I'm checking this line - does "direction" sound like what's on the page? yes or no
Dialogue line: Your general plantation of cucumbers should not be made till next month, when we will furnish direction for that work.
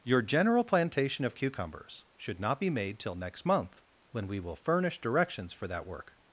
no